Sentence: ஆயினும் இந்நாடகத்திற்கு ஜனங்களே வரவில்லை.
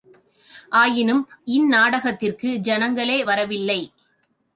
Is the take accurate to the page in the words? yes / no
yes